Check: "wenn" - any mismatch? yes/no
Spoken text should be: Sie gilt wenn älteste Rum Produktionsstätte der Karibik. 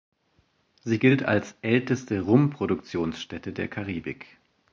yes